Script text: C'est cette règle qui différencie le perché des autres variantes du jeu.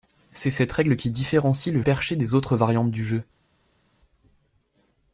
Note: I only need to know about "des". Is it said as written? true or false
true